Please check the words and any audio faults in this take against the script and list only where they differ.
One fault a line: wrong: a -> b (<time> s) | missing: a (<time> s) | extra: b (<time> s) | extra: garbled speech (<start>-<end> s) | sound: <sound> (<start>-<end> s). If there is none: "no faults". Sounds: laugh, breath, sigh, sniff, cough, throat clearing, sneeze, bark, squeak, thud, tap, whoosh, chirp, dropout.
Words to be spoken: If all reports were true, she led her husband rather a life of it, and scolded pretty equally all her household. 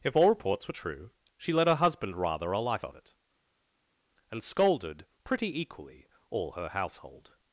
no faults